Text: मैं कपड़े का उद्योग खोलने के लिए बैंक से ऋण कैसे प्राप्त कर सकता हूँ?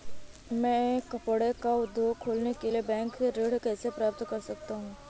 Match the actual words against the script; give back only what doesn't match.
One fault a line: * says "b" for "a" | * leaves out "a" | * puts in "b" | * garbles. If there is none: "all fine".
all fine